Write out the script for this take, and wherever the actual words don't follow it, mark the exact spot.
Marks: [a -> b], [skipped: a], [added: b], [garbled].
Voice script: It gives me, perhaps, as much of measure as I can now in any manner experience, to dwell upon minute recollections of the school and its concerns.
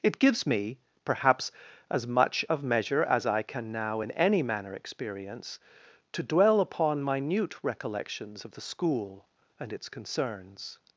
It gives me, perhaps, as much of measure as I can now in any manner experience, to dwell upon minute recollections of the school and its concerns.